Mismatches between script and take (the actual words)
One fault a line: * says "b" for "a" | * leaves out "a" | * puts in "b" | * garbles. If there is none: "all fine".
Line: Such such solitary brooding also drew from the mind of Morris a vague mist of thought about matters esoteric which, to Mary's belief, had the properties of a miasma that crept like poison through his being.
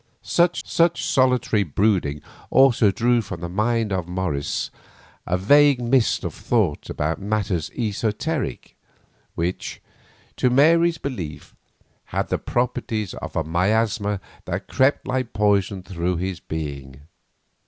all fine